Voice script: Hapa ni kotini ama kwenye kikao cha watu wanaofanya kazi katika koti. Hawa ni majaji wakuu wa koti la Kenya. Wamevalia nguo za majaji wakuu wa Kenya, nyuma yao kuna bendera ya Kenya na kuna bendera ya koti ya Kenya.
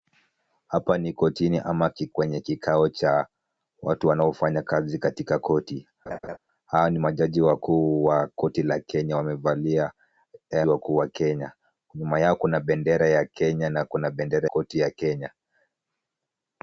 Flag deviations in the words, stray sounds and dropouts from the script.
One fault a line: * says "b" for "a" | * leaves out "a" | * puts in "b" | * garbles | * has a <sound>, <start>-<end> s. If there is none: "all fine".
* leaves out "ama"
* has a laugh, 6.1-6.4 s
* leaves out "nguo za majaji"
* leaves out "ya"